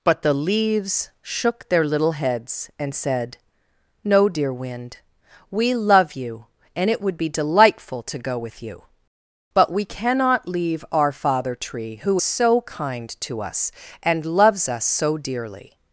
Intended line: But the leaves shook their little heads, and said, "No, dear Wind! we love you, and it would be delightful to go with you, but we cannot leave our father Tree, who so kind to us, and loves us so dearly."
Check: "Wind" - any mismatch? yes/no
no